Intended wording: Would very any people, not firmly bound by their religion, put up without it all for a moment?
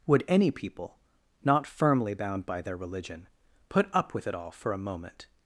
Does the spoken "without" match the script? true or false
false